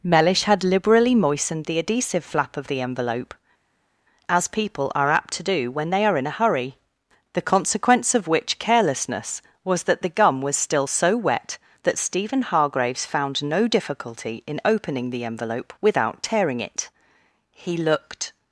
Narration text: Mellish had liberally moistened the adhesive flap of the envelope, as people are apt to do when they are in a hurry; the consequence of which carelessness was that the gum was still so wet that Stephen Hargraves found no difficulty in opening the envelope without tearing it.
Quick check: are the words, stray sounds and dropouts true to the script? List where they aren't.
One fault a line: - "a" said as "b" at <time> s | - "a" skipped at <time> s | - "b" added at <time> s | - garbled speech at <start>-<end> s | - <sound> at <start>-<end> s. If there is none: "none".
- "He looked" added at 17.5 s